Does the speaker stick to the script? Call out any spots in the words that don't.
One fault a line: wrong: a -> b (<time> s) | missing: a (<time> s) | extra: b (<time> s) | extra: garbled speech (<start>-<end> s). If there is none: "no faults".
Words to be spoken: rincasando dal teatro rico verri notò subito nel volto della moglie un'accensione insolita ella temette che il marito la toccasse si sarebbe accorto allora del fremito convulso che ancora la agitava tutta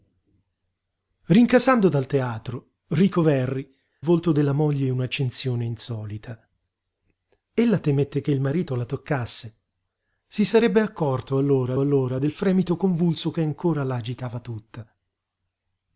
missing: notò subito nel (3.7 s)
extra: allora (11.8 s)